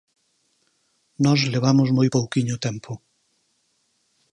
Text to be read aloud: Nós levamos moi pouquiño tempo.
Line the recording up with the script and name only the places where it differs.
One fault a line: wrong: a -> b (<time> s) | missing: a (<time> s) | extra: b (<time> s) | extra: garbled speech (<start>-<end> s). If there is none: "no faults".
no faults